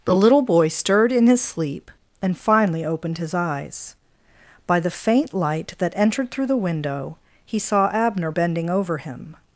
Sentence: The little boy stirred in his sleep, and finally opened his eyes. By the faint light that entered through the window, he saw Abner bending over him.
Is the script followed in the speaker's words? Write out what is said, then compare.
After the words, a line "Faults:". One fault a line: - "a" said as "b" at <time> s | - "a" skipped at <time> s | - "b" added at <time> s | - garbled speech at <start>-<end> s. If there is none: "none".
The little boy stirred in his sleep, and finally opened his eyes. By the faint light that entered through the window, he saw Abner bending over him.
Faults:
none